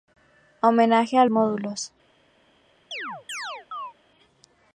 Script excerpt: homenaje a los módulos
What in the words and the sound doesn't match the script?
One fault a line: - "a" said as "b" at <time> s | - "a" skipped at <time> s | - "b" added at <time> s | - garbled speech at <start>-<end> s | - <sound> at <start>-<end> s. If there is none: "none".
- "los" skipped at 1.2 s
- chirp at 2.9-3.9 s